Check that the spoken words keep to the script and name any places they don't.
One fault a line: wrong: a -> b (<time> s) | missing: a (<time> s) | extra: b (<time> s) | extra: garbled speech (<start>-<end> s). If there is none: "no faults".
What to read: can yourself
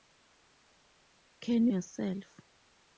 no faults